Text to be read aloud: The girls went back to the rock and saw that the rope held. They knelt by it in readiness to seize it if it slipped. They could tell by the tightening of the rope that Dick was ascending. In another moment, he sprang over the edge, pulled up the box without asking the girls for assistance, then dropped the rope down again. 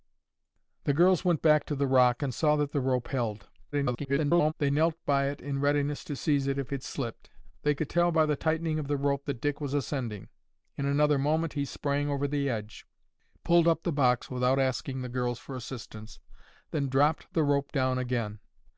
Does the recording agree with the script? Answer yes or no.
no